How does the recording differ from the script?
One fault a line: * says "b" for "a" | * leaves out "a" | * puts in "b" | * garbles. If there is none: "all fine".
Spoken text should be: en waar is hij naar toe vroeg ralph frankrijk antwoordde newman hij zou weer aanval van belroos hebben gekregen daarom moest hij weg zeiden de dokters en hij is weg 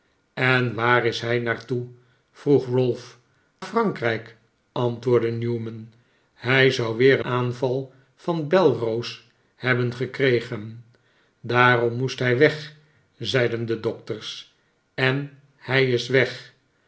all fine